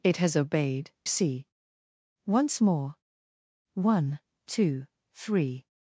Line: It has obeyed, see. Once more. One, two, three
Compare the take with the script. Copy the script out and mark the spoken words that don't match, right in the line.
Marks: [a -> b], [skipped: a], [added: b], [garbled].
It has obeyed, see. Once more. One, two, three